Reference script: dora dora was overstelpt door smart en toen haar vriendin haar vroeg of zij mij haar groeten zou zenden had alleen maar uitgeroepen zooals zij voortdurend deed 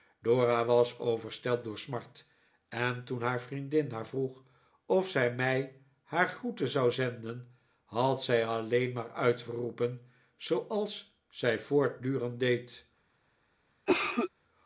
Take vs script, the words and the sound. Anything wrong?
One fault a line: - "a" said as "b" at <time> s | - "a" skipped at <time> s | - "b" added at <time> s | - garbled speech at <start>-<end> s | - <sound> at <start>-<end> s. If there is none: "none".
- "dora" skipped at 0.7 s
- "zij" added at 8.2 s
- cough at 13.9-14.3 s